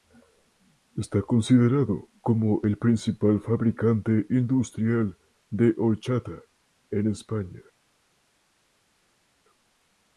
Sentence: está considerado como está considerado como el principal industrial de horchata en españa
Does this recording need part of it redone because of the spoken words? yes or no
yes